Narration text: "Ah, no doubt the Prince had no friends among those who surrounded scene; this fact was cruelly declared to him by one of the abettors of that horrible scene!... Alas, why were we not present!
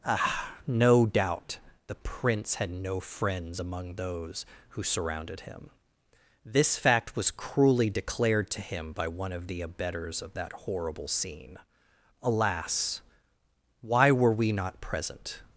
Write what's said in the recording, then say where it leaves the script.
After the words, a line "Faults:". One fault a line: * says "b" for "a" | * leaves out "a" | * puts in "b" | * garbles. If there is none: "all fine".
"Ah, no doubt the Prince had no friends among those who surrounded him; this fact was cruelly declared to him by one of the abettors of that horrible scene!... Alas, why were we not present!
Faults:
* says "him" for "scene"